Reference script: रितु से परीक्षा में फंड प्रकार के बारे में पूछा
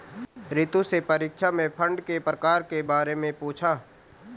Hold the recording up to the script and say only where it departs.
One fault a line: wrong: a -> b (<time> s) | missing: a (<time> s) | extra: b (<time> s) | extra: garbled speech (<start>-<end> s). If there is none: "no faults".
extra: के (2.0 s)